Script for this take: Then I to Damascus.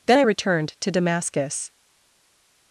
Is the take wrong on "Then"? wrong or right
right